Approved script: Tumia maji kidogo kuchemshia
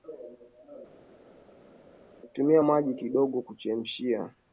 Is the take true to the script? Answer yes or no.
yes